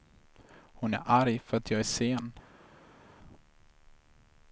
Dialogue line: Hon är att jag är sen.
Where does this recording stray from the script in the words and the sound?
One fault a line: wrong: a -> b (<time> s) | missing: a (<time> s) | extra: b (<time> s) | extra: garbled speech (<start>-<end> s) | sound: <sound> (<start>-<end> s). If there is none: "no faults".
extra: arg för (1.0 s)